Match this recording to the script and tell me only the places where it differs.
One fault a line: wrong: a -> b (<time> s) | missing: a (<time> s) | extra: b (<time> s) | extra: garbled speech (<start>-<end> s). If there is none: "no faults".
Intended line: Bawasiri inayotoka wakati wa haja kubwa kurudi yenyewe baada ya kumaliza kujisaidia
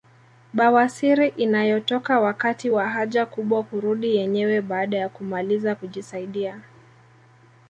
no faults